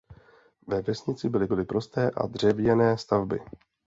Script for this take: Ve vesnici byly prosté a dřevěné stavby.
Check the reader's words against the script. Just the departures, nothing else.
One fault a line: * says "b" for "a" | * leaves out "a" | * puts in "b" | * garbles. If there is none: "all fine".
* puts in "byly"